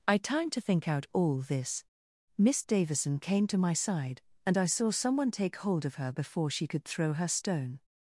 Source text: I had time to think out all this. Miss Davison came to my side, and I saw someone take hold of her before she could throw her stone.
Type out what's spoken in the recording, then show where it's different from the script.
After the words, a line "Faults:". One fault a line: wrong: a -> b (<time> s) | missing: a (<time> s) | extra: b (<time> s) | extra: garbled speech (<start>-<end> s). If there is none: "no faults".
I time to think out all this. Miss Davison came to my side, and I saw someone take hold of her before she could throw her stone.
Faults:
missing: had (0.2 s)